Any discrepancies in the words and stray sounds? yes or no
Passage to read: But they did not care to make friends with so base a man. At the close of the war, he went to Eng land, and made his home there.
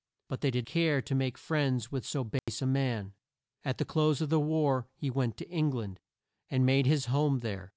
yes